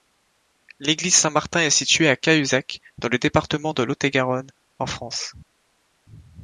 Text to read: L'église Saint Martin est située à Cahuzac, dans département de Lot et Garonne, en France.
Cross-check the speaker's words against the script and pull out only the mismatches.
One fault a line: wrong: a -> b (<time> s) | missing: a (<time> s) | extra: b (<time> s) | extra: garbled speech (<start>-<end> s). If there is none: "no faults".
extra: le (3.1 s)